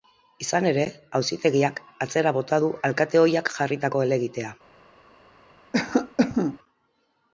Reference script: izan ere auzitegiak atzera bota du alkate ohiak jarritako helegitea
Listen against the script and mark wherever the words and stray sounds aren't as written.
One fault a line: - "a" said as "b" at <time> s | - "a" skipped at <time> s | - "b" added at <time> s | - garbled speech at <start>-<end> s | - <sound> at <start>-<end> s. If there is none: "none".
- cough at 5.7-6.6 s